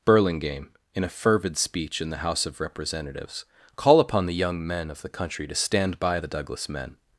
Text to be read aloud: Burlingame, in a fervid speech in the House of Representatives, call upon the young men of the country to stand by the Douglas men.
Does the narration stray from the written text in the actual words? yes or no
no